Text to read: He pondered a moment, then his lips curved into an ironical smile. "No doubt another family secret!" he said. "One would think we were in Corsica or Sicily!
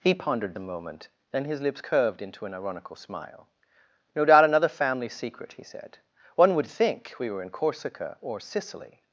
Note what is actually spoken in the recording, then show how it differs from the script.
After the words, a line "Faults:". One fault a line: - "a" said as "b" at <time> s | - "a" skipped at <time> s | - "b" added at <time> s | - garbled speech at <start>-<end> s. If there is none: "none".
He pondered a moment, then his lips curved into an ironical smile. "No doubt another family secret!" he said. "One would think we were in Corsica or Sicily!
Faults:
none